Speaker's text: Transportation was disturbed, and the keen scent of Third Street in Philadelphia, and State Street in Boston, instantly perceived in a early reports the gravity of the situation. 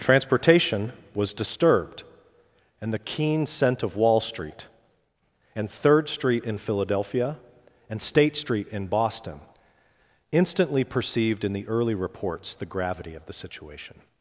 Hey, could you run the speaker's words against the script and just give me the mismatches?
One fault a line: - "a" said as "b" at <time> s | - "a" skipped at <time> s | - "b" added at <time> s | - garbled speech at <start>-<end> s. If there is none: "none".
- "Wall Street and" added at 4.0 s
- "a" said as "the" at 11.5 s